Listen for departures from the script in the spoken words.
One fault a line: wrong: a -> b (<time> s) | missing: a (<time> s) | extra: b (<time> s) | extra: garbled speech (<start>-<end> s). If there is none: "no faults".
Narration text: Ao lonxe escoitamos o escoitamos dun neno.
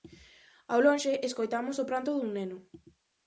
wrong: escoitamos -> pranto (1.9 s)